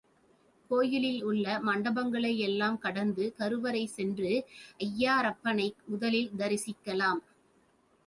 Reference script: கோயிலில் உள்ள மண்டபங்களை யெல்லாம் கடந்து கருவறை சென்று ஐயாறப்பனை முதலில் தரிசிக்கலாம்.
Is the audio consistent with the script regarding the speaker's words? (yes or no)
yes